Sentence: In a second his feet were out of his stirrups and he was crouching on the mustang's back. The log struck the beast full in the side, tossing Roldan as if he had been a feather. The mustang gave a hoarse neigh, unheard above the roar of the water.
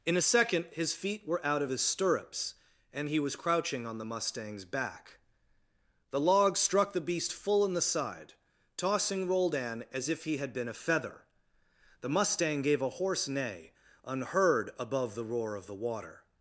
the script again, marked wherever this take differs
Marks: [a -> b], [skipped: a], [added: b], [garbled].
In a second his feet were out of his stirrups and he was crouching on the mustang's back. The log struck the beast full in the side, tossing Roldan as if he had been a feather. The mustang gave a hoarse neigh, unheard above the roar of the water.